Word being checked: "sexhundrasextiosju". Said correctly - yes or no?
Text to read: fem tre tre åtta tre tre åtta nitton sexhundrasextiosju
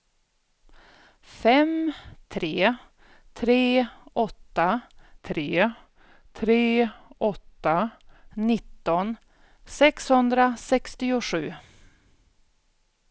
yes